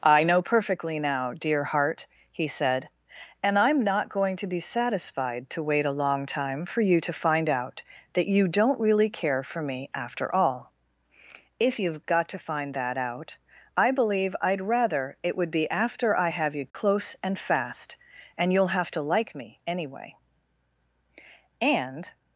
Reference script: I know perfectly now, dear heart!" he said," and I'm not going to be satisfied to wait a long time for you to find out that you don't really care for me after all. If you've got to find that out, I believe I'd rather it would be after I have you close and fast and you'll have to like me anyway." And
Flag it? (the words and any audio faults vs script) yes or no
yes